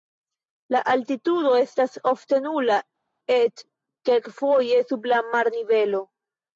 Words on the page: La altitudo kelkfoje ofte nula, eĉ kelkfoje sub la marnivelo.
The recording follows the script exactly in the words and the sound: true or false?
false